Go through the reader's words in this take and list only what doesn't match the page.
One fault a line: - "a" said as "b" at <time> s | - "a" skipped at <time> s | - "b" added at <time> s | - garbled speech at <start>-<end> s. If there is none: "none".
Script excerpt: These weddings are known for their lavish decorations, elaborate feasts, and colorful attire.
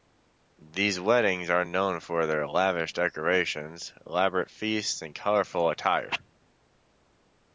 none